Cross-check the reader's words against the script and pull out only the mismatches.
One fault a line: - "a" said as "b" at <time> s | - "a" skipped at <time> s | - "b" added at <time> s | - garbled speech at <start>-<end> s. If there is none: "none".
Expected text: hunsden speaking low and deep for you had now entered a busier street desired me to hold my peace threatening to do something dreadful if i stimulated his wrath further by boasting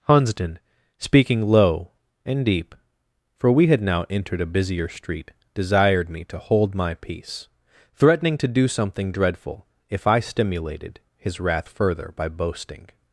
- "you" said as "we" at 3.5 s